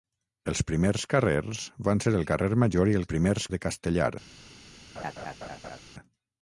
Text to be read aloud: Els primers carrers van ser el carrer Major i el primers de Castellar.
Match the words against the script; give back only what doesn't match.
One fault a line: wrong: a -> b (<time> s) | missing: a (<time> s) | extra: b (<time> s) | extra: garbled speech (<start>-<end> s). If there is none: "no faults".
no faults